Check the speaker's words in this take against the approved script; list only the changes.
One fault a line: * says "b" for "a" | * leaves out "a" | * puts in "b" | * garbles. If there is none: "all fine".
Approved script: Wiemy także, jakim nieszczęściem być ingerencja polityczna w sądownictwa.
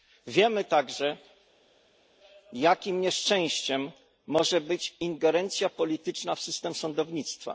* puts in "może"
* puts in "system"